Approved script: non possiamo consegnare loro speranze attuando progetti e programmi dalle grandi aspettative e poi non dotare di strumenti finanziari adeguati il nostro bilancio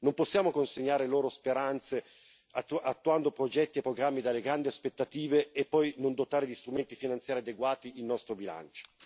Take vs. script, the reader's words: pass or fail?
pass